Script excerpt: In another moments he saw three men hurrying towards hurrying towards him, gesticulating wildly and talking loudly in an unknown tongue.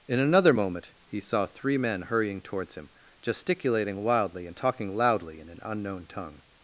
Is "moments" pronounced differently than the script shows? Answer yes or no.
yes